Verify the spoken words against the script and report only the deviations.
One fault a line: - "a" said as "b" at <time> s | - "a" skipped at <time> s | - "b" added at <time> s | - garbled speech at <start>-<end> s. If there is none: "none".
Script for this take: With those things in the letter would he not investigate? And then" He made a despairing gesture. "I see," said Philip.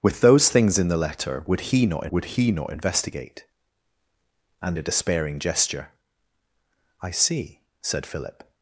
- "investigate And then He made" said as "would he not investigate And" at 2.1 s